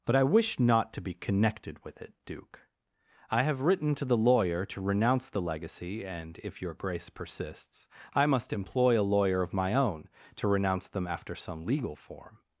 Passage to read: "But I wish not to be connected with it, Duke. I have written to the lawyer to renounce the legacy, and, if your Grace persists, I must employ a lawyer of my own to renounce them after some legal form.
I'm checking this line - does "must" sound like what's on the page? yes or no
yes